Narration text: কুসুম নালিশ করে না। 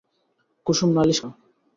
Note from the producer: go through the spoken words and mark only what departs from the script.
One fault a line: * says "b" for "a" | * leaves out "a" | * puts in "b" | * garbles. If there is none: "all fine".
* leaves out "করে"